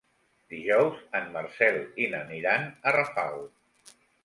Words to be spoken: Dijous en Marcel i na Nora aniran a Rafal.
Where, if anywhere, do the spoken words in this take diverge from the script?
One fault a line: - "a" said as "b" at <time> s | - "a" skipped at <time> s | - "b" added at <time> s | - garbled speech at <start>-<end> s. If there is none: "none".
- "Nora" skipped at 2.2 s